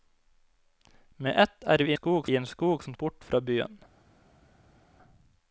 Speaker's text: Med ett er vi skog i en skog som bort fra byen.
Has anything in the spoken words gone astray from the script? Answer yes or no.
no